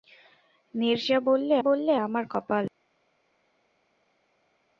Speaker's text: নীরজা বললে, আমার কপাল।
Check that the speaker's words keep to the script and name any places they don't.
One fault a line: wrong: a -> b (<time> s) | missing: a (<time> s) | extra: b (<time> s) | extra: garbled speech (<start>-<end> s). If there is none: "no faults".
extra: বললে (1.6 s)